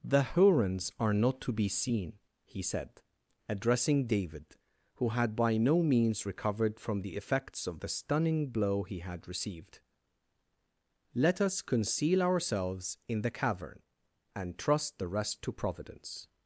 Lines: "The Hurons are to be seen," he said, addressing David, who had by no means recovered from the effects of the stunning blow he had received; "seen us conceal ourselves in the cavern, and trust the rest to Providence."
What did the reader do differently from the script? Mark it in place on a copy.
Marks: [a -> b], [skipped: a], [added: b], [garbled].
"The Hurons are [added: not] to be seen," he said, addressing David, who had by no means recovered from the effects of the stunning blow he had received; ["seen -> let] us conceal ourselves in the cavern, and trust the rest to Providence."